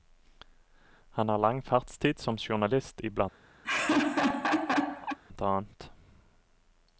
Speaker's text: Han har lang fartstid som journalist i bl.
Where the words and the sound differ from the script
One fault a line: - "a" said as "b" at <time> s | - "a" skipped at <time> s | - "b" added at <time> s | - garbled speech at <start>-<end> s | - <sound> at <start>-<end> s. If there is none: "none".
- laugh at 3.6-5.2 s